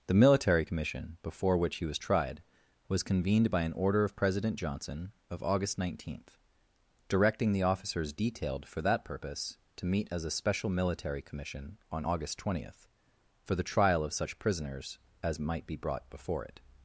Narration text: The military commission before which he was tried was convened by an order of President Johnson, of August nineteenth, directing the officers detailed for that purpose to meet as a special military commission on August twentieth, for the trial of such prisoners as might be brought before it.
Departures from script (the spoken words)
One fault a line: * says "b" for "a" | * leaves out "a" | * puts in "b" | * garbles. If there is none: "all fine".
all fine